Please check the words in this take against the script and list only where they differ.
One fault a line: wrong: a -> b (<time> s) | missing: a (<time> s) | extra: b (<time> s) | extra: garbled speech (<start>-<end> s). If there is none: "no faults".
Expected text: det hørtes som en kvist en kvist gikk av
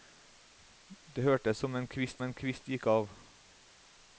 no faults